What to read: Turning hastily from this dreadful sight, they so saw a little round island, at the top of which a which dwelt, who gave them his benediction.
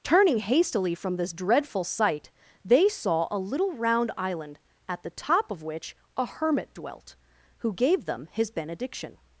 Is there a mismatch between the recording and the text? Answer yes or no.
yes